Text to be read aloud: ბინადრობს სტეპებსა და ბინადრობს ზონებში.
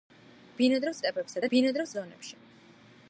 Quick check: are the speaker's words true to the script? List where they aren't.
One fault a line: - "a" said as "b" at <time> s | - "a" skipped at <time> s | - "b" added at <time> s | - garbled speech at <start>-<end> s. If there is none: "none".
none